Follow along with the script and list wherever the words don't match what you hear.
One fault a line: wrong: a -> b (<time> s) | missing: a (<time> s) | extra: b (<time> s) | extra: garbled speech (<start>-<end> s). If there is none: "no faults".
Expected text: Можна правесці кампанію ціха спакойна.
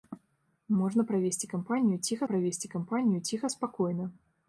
extra: правесці кампанію ціха (2.2 s)